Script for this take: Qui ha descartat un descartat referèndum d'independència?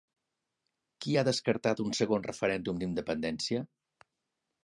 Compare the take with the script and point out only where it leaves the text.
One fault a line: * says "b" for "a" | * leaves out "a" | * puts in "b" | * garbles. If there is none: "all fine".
* says "segon" for "descartat"